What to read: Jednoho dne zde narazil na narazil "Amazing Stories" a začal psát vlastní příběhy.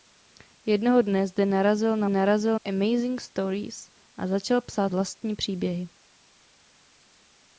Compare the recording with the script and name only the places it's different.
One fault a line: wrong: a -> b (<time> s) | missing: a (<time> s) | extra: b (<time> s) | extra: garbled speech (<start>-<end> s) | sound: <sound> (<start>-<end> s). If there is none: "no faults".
no faults